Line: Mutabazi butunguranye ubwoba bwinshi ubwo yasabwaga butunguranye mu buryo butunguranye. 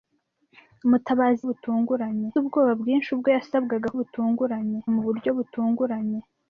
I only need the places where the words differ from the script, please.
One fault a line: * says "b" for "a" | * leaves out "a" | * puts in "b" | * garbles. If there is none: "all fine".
all fine